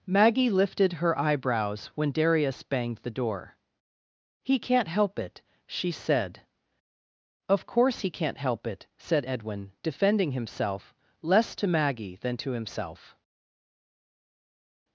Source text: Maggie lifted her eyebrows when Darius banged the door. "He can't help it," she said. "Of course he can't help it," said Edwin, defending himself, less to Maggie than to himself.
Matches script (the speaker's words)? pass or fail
pass